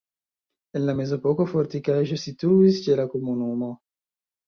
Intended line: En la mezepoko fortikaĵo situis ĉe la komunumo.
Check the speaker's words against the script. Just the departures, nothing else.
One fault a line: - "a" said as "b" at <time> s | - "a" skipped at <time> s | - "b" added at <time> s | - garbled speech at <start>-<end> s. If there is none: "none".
none